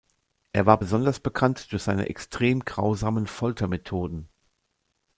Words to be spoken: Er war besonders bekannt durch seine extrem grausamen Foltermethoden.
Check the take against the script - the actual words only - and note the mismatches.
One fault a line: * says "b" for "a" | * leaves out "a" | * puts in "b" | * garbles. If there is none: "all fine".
all fine